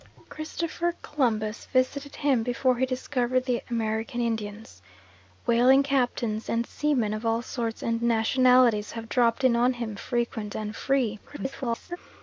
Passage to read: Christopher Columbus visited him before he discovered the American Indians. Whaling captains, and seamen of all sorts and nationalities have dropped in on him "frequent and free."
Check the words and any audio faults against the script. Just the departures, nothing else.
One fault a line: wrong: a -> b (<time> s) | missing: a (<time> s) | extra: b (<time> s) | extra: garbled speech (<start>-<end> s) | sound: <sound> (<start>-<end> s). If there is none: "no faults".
extra: garbled speech (11.3-12.0 s)